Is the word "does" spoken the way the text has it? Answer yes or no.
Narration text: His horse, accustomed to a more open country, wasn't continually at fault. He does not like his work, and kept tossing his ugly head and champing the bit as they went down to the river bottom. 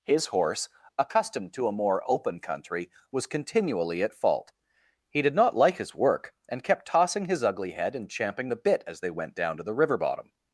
no